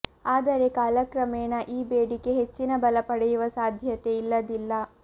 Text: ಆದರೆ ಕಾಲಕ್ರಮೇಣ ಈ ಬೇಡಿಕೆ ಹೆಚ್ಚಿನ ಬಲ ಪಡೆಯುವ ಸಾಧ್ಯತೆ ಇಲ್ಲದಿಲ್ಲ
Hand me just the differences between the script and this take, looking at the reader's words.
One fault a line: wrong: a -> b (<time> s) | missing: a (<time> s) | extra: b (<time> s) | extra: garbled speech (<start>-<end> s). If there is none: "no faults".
no faults